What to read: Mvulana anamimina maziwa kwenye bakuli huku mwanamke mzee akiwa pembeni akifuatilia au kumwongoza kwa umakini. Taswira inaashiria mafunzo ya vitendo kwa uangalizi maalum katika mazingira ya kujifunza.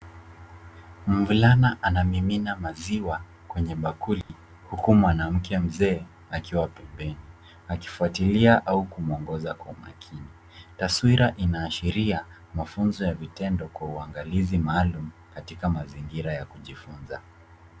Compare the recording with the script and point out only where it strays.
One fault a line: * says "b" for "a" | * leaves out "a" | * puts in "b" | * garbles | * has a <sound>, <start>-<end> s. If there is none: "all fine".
* has a dropout, 4.2-4.3 s